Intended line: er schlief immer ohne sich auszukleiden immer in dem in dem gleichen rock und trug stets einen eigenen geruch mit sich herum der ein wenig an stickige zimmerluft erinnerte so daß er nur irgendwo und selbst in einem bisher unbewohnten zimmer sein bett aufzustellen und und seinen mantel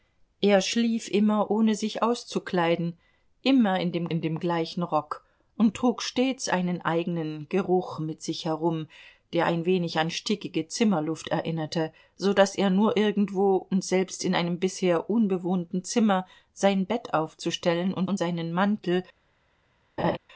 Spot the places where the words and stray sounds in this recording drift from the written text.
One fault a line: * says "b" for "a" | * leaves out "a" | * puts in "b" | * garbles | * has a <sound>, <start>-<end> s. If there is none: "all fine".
* has a laugh, 20.0-20.2 s